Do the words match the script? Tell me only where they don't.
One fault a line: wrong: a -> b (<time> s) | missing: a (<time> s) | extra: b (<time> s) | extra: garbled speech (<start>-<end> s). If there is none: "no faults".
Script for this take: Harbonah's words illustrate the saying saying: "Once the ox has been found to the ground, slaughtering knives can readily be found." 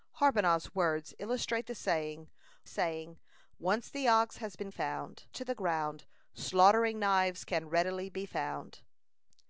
no faults